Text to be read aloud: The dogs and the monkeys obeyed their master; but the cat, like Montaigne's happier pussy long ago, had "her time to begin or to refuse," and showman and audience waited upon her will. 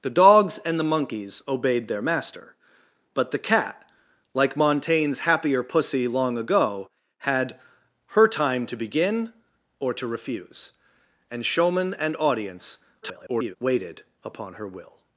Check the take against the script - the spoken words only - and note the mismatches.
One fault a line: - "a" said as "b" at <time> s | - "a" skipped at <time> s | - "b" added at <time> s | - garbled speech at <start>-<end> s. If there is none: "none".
- garbled speech at 13.0-13.6 s